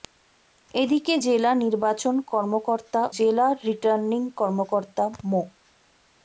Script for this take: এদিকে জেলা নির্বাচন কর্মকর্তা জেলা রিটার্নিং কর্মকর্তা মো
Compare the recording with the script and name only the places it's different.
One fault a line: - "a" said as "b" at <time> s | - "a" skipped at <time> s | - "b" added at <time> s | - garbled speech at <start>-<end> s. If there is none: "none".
none